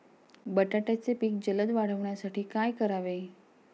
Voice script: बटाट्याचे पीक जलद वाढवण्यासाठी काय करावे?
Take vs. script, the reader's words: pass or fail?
pass